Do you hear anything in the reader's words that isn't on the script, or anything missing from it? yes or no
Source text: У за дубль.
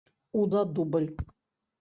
no